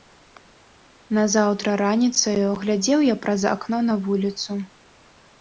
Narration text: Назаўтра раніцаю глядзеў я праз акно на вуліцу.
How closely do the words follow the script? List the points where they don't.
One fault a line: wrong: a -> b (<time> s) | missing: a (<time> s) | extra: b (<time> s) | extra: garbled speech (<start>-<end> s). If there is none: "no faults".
no faults